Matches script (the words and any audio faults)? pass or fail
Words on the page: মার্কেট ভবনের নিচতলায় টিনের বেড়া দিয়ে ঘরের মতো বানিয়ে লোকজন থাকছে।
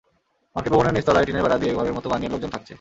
pass